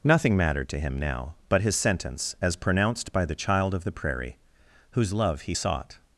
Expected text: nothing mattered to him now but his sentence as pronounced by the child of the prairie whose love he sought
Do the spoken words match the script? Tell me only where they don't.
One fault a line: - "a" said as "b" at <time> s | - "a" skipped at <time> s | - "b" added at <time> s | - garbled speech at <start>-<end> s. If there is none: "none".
none